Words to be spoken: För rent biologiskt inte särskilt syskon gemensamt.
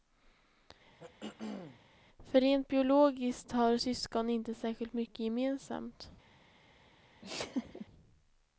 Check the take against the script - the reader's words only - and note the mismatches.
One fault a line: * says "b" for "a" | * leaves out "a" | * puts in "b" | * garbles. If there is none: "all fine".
* puts in "har syskon"
* says "mycket" for "syskon"